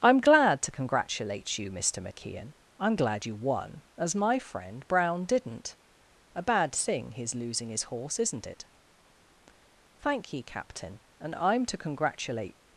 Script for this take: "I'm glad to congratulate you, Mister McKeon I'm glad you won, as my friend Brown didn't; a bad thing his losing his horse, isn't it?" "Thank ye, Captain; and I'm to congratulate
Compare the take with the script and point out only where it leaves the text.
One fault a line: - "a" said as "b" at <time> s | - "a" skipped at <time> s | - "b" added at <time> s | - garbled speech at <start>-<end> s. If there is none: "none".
none